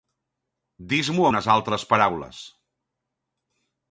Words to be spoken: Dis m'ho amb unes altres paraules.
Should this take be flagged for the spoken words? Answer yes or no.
yes